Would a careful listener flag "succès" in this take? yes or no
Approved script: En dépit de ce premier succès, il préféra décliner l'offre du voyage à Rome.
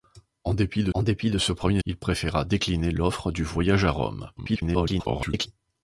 yes